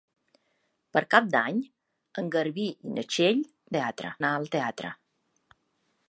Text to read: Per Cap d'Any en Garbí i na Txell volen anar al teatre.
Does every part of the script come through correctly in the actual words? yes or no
no